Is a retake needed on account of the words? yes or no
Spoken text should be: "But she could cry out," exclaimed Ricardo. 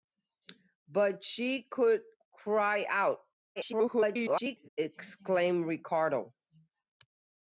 yes